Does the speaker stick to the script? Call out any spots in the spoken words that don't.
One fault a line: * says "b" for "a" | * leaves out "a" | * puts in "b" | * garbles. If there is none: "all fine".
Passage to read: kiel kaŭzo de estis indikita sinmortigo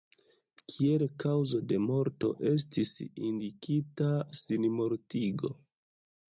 * puts in "morto"